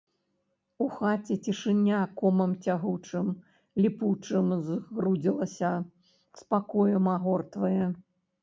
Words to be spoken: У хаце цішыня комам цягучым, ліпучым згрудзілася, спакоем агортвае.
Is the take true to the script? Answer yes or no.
yes